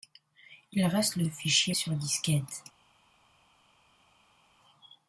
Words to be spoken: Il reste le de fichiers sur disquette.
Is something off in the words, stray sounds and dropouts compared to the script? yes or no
no